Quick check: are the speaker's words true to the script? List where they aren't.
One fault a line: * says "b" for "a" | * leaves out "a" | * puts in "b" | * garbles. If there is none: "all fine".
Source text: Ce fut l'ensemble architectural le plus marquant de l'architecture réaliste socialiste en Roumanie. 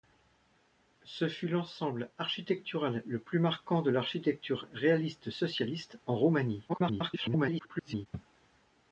* garbles